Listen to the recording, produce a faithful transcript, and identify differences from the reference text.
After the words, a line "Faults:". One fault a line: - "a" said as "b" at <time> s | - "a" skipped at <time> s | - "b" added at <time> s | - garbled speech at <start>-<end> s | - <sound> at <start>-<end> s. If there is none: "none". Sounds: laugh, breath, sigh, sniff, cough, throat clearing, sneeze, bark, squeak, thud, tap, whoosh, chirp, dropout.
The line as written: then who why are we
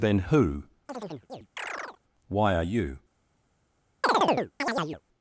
then who why are you
Faults:
- chirp at 0.9-2.0 s
- "we" said as "you" at 2.6 s
- chirp at 4.0-5.0 s